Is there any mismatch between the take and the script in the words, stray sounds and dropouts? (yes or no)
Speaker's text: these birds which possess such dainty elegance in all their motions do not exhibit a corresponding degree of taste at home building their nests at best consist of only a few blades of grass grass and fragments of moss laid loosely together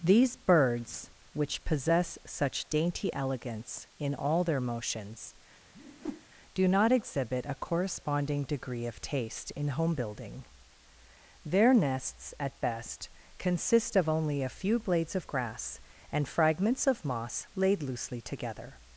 yes